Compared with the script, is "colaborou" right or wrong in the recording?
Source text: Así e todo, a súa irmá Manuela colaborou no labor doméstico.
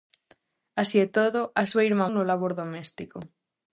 wrong